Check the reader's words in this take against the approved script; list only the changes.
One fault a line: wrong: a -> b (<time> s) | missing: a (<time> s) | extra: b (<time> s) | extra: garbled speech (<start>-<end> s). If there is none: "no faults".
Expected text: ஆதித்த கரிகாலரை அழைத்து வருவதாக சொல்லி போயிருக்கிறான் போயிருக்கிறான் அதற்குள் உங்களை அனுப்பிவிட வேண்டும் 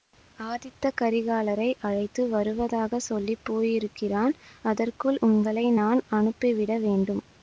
missing: போயிருக்கிறான் (4.3 s)
extra: நான் (5.8 s)